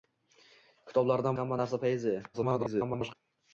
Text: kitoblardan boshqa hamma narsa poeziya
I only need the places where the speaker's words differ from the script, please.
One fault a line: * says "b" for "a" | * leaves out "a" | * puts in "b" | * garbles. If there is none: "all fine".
* leaves out "boshqa"
* garbles